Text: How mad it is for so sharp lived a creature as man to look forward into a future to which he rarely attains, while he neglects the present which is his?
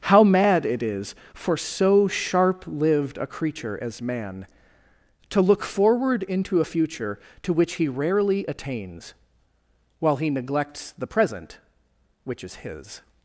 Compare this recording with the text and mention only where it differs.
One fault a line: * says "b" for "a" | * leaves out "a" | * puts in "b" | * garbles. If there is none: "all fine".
all fine